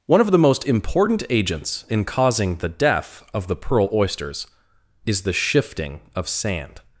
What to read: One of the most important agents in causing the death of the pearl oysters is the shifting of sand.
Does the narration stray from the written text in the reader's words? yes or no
no